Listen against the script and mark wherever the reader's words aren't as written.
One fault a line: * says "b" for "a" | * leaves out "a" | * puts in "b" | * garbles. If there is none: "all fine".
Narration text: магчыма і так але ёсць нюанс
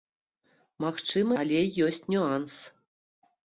* leaves out "і так"